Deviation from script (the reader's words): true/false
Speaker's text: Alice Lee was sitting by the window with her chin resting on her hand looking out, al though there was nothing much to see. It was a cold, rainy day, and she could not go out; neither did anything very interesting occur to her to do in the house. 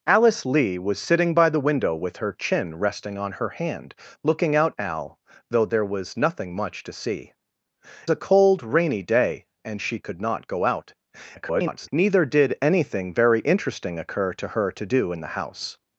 true